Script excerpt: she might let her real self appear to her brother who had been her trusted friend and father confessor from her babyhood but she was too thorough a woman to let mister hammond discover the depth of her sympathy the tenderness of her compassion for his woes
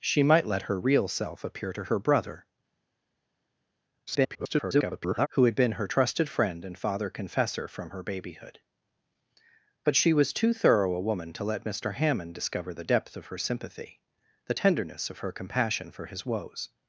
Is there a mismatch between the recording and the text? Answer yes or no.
yes